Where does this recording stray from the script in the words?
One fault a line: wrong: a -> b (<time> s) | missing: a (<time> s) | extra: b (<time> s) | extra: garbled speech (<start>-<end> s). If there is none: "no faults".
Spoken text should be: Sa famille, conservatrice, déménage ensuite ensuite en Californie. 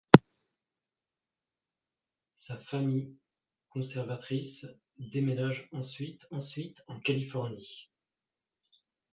no faults